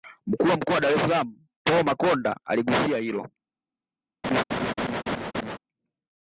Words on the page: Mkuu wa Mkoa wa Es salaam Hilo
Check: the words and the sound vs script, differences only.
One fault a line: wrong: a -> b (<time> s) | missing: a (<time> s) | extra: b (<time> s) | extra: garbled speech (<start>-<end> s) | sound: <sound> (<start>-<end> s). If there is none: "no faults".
extra: Dar (0.8 s)
extra: Paul Makonda aligusia (1.6 s)
sound: laugh (4.2-5.6 s)